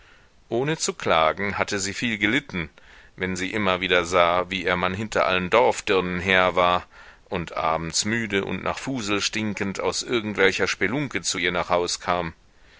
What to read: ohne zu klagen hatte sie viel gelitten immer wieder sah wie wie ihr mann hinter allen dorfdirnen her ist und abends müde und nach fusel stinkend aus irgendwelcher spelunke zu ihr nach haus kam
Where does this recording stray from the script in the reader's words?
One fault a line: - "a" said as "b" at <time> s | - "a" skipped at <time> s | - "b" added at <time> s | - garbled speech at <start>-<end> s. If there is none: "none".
- "wenn sie" added at 3.2 s
- "wie" skipped at 4.6 s
- "ist" said as "war" at 6.5 s